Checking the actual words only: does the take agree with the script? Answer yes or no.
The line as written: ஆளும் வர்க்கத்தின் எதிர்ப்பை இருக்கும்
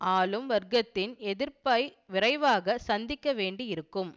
no